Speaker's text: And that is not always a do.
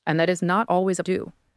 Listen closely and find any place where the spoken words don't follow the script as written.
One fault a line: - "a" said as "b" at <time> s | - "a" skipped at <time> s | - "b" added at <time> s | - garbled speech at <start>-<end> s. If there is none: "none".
none